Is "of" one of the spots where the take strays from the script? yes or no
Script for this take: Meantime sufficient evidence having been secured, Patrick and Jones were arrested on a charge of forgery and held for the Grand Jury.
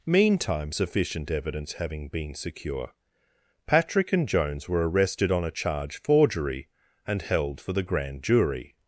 yes